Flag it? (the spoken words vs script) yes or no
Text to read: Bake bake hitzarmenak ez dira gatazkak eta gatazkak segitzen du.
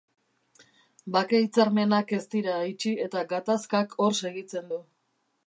yes